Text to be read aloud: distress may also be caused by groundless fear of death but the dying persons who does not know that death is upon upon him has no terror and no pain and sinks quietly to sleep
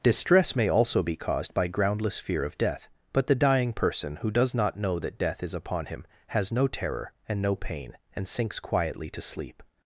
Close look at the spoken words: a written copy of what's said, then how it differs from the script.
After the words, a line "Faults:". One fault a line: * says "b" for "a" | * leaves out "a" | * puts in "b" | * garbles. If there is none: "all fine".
distress may also be caused by groundless fear of death but the dying person who does not know that death is upon him has no terror and no pain and sinks quietly to sleep
Faults:
* says "person" for "persons"
* leaves out "upon"